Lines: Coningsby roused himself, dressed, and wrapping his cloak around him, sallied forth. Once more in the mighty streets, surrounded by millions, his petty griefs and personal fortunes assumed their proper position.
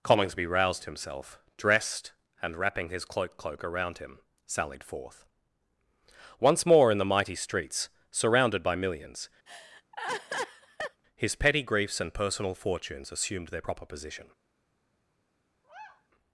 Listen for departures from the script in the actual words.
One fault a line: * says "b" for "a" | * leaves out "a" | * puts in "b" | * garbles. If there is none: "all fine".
* puts in "cloak"